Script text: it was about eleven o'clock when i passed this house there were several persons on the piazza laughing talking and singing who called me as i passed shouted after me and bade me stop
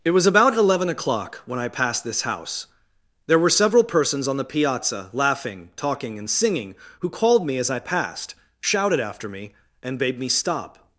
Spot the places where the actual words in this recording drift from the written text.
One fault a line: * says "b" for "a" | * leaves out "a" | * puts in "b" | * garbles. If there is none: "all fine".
all fine